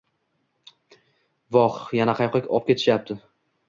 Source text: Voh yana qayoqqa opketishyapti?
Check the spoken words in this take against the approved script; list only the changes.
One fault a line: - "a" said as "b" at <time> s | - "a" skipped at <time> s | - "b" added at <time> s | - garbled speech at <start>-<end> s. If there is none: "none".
none